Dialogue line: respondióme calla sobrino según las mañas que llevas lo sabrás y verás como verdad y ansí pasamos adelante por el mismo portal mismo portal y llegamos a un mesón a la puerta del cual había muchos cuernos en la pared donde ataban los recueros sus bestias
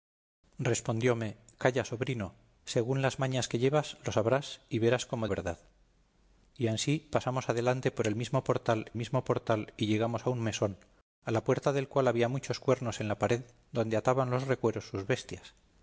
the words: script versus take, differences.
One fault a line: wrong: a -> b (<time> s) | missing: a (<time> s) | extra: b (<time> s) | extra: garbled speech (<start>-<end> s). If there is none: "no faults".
no faults